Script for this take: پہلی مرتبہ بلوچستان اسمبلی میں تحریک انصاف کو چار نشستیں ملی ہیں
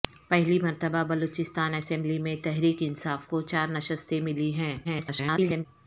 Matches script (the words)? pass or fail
fail